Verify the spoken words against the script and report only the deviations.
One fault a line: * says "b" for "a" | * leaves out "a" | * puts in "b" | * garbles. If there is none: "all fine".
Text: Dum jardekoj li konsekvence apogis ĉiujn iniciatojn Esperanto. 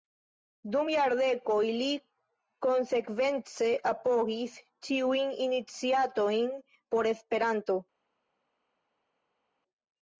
* puts in "por"